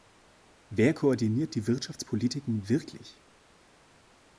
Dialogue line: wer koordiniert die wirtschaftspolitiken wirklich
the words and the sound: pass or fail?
pass